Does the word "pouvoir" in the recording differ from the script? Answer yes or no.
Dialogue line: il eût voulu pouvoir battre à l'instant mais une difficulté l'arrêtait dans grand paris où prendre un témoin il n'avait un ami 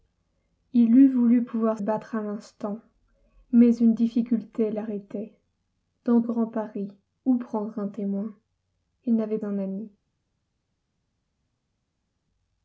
no